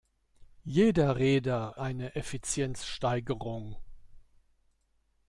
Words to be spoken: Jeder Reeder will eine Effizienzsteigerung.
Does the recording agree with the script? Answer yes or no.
no